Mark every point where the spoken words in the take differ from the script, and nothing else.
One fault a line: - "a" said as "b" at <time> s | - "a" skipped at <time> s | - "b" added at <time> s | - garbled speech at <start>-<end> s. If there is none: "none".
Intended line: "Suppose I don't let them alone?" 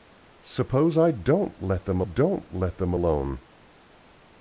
- "don't let them" added at 2.0 s